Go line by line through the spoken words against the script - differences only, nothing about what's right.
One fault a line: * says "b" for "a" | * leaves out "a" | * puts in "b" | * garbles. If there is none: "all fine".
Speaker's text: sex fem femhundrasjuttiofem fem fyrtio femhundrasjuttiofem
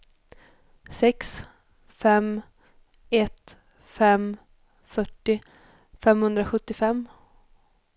* says "ett" for "femhundrasjuttiofem"